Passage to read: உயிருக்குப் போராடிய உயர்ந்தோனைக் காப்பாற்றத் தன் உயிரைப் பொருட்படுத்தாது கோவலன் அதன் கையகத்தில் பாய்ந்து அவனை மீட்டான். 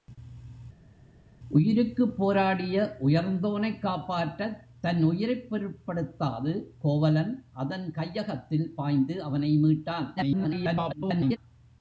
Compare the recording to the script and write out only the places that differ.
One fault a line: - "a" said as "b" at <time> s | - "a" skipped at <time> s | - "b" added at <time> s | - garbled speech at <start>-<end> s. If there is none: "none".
- garbled speech at 10.2-11.4 s